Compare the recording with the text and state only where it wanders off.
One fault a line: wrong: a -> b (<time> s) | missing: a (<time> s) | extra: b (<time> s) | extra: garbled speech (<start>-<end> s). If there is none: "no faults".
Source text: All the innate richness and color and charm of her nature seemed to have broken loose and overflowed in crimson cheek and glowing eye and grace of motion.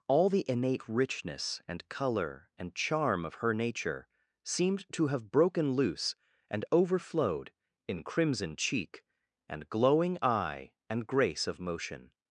no faults